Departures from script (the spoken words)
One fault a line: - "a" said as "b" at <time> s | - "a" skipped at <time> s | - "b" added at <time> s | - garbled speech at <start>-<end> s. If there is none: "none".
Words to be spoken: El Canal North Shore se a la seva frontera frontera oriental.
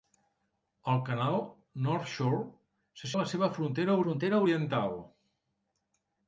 none